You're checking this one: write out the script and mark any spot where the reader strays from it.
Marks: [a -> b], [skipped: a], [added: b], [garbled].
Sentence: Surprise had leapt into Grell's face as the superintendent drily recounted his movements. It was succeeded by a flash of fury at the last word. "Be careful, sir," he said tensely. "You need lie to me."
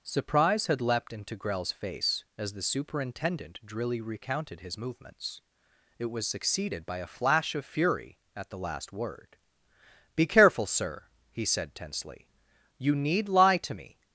Surprise had leapt into Grell's face as the superintendent drily recounted his movements. It was succeeded by a flash of fury at the last word. "Be careful, sir," he said tensely. "You need lie to me."